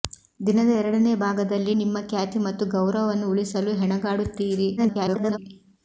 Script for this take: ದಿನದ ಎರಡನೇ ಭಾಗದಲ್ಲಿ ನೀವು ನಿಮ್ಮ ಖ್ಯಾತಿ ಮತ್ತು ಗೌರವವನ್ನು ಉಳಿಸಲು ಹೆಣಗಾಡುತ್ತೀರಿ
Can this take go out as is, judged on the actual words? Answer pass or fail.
fail